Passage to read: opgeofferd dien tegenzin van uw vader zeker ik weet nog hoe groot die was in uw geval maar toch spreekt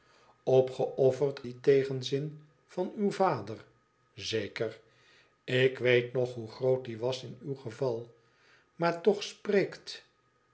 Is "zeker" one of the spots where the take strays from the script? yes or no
no